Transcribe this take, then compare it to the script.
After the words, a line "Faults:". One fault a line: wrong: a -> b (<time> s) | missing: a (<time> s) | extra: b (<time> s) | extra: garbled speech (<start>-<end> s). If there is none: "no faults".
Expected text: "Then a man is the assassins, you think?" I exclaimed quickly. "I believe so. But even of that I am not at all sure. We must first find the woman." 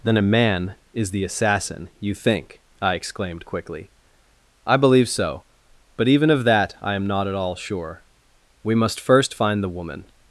"Then a man is the assassin, you think?" I exclaimed quickly. "I believe so. But even of that I am not at all sure. We must first find the woman."
Faults:
wrong: assassins -> assassin (1.2 s)